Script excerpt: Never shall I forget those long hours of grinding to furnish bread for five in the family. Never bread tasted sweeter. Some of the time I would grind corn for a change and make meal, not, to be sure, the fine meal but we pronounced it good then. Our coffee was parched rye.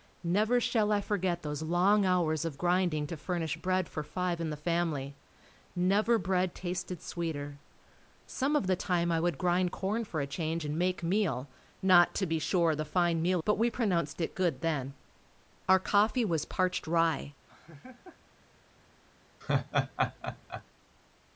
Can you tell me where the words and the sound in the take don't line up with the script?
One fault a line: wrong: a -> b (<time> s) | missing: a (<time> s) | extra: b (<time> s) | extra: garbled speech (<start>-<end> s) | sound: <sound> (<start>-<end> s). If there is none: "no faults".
sound: laugh (17.5-18.2 s)
sound: laugh (19.4-20.6 s)